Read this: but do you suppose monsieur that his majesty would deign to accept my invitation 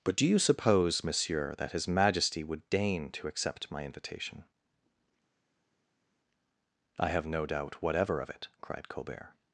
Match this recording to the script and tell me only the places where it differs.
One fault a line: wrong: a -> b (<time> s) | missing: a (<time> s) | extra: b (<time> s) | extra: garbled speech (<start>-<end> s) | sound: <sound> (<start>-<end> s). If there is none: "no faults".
extra: i have no doubt whatever of it cried colbert (7.0 s)